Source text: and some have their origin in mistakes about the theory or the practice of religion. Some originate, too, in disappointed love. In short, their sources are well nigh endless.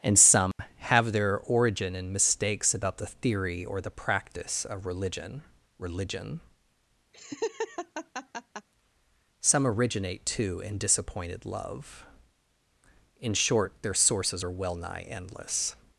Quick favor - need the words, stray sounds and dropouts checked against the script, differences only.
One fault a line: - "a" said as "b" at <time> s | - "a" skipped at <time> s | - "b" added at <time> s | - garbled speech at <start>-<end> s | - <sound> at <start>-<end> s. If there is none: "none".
- dropout at 0.5-0.6 s
- "religion" added at 5.8 s
- laugh at 7.1-8.7 s